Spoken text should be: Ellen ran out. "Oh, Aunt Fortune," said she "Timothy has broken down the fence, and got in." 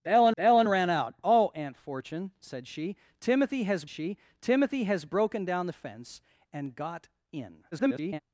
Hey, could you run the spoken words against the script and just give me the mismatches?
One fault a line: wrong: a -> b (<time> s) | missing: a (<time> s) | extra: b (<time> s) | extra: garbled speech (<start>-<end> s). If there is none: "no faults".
extra: ellen (0.4 s)
extra: she Timothy has (3.9 s)
extra: garbled speech (7.7-8.2 s)